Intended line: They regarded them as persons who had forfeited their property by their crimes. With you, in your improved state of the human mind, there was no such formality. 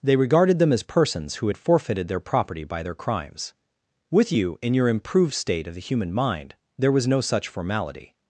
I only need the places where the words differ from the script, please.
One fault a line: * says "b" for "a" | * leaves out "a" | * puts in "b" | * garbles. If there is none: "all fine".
all fine